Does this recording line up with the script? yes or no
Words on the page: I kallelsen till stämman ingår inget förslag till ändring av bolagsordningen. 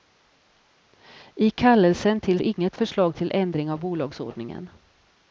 no